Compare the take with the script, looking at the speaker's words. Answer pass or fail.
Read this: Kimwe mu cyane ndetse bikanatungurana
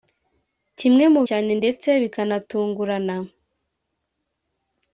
pass